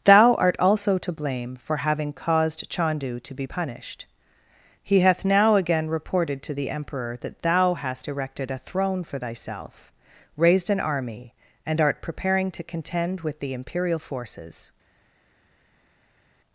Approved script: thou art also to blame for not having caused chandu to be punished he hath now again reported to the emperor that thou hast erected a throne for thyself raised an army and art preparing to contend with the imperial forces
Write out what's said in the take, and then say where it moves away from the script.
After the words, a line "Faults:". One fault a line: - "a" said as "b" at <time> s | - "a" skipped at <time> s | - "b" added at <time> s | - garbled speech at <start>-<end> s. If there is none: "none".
thou art also to blame for having caused chandu to be punished he hath now again reported to the emperor that thou hast erected a throne for thyself raised an army and art preparing to contend with the imperial forces
Faults:
- "not" skipped at 1.8 s